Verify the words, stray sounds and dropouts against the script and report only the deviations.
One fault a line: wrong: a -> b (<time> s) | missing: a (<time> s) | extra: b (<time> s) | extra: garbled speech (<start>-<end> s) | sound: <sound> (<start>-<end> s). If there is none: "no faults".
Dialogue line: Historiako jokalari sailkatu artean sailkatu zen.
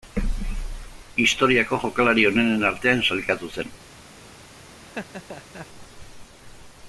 wrong: sailkatu -> onenen (2.3 s)
sound: laugh (4.8-5.7 s)